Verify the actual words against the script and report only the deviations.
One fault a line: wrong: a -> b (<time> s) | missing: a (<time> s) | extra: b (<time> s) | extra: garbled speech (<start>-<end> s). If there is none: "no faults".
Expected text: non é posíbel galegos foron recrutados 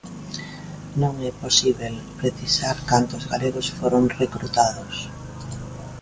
extra: precisar cantos (2.2 s)